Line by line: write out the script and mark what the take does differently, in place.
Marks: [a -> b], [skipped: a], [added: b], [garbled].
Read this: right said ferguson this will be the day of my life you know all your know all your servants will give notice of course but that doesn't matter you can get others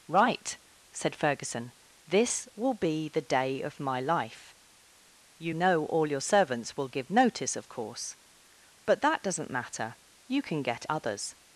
right said ferguson this will be the day of my life you know all your [skipped: know all your] servants will give notice of course but that doesn't matter you can get others